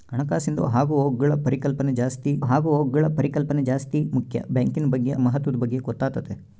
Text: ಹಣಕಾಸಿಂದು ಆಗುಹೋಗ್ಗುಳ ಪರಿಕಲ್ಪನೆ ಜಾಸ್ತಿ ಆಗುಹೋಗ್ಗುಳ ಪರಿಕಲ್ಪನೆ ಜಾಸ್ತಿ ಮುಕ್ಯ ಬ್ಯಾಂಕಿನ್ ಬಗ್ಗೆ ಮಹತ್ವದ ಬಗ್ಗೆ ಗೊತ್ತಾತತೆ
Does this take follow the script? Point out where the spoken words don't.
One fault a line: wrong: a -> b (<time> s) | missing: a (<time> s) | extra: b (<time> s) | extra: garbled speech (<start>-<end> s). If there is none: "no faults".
no faults